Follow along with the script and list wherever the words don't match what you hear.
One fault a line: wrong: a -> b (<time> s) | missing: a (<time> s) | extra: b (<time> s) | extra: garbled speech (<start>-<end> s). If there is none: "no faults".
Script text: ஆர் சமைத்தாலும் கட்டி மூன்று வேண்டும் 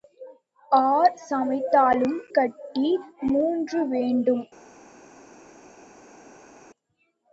no faults